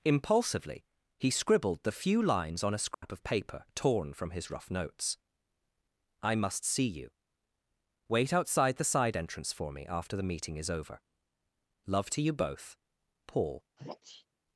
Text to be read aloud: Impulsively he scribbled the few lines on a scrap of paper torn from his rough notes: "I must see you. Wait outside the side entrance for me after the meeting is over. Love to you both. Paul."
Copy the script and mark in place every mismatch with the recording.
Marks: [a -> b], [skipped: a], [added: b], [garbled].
Impulsively he scribbled the few lines on a scrap of paper torn from his rough notes: "I must see you. Wait outside the side entrance for me after the meeting is over. Love to you both. Paul."